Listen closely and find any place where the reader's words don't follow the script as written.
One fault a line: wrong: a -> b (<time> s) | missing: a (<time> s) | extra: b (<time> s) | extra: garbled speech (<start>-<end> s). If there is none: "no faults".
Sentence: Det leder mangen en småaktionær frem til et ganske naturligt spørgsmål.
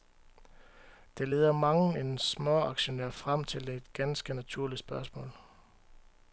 no faults